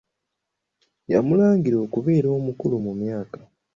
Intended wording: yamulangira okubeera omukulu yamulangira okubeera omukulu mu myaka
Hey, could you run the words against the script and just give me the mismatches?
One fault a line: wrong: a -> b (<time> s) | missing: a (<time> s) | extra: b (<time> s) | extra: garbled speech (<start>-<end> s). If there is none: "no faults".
missing: yamulangira okubeera omukulu (2.8 s)